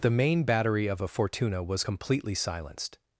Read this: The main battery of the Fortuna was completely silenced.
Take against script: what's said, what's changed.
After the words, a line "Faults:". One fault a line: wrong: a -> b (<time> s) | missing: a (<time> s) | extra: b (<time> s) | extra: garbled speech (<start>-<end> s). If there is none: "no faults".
The main battery of a Fortuna was completely silenced.
Faults:
wrong: the -> a (1.0 s)